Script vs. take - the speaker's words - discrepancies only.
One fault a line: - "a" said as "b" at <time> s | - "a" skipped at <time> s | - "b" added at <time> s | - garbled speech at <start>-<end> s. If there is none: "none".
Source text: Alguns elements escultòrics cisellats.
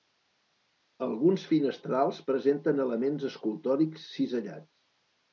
- "finestrals presenten" added at 1.5 s